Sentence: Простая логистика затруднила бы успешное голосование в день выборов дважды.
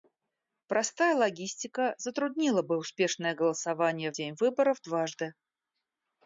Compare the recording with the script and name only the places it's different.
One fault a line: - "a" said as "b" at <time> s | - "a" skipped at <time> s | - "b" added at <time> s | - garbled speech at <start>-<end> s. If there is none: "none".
none